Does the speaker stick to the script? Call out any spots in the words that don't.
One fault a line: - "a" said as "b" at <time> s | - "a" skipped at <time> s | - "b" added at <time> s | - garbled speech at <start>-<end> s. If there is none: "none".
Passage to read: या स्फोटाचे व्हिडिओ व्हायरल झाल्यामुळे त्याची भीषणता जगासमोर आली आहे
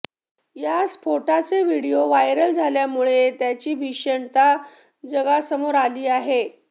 none